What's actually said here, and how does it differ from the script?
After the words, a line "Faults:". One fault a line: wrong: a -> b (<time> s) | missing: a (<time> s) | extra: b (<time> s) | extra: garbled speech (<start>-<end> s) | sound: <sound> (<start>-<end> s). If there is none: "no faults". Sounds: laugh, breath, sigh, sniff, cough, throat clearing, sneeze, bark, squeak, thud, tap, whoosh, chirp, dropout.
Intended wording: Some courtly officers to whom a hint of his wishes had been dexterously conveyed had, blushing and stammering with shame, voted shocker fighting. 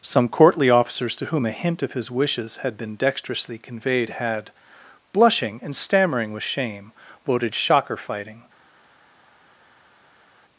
Some courtly officers to whom a hint of his wishes had been dexterously conveyed had, blushing and stammering with shame, voted shocker fighting.
Faults:
no faults